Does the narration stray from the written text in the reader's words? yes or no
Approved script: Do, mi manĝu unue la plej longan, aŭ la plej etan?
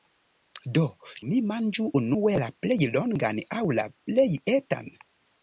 no